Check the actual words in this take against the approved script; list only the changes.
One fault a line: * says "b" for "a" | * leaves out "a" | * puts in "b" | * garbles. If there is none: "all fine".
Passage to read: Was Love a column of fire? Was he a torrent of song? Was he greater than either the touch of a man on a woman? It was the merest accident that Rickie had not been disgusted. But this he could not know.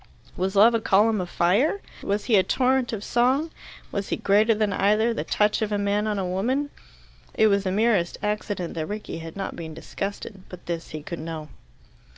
* leaves out "not"